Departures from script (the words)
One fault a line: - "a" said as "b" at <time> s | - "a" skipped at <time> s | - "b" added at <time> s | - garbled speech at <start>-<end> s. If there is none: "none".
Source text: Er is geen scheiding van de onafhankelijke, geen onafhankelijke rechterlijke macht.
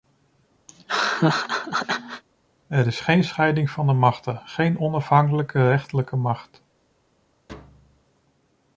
- "onafhankelijke" said as "machten" at 3.9 s